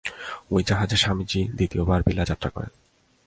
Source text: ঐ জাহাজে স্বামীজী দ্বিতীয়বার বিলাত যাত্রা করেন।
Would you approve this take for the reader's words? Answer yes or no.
yes